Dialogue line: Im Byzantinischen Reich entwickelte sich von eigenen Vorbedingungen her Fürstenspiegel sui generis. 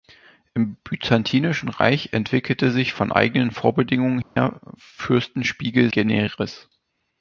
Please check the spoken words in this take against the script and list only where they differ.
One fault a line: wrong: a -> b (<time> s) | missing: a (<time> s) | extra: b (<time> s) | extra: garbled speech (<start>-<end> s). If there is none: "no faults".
missing: sui (5.9 s)